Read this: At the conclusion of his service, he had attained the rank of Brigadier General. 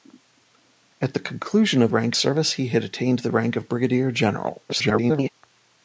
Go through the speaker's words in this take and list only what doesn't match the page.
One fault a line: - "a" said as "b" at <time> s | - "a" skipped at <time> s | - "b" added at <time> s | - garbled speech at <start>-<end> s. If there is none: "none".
- "his" said as "rank" at 1.9 s
- garbled speech at 4.7-5.3 s